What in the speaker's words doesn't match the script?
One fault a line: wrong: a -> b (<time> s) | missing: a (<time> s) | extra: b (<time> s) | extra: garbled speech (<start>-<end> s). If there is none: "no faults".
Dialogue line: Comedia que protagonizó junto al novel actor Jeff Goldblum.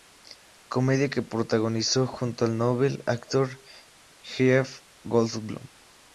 no faults